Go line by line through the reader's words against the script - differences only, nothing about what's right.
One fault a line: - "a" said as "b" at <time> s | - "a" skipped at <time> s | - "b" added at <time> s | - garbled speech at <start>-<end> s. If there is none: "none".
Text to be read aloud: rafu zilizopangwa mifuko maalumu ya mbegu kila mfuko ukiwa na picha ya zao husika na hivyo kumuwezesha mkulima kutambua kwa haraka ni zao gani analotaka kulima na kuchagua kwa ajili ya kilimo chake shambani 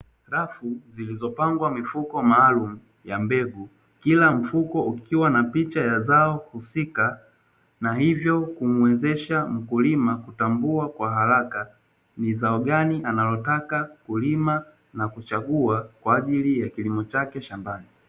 none